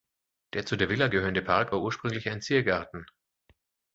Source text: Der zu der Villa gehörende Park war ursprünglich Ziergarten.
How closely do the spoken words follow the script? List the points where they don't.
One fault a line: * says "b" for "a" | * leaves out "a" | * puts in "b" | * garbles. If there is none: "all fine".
* puts in "ein"